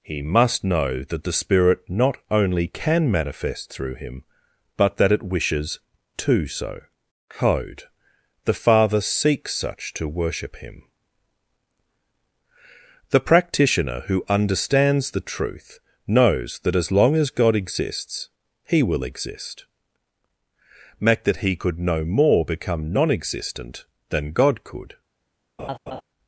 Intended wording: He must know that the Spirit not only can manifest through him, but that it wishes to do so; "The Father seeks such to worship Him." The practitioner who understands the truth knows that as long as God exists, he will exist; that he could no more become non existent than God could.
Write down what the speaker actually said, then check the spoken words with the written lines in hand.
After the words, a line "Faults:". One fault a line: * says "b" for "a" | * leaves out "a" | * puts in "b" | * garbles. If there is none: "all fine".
He must know that the Spirit not only can manifest through him, but that it wishes to so code; "The Father seeks such to worship Him." The practitioner who understands the truth knows that as long as God exists, he will exist; make that he could no more become non existent than God could.
Faults:
* says "so code" for "do so"
* puts in "make"